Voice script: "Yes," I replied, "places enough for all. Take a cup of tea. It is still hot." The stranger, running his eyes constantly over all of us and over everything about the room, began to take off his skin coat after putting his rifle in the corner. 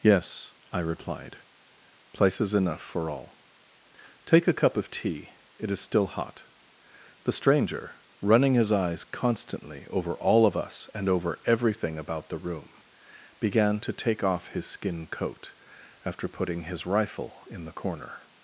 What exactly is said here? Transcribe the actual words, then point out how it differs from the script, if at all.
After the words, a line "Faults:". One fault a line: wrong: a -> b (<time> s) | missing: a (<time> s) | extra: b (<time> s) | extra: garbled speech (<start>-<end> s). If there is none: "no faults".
"Yes," I replied, "places enough for all. Take a cup of tea. It is still hot." The stranger, running his eyes constantly over all of us and over everything about the room, began to take off his skin coat after putting his rifle in the corner.
Faults:
no faults